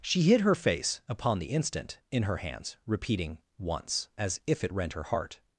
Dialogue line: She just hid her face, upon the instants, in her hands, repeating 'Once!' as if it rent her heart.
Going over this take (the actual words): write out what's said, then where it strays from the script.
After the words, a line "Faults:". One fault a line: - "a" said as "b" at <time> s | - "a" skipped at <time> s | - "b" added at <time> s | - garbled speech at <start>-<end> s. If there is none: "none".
She hid her face, upon the instant, in her hands, repeating 'Once!' as if it rent her heart.
Faults:
- "just" skipped at 0.2 s
- "instants" said as "instant" at 1.5 s